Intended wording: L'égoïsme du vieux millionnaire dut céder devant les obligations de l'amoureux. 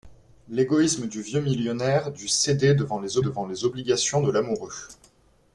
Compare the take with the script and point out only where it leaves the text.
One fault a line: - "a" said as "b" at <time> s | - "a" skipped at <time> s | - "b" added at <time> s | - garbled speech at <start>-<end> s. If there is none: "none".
- "devant les" added at 3.2 s